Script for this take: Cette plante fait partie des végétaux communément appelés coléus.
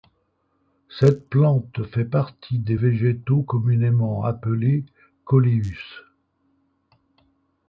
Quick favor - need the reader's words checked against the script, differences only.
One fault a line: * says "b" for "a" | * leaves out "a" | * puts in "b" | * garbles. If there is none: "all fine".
all fine